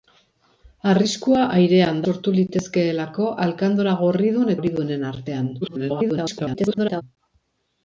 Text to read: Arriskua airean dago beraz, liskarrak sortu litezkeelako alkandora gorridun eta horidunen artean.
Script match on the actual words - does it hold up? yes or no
no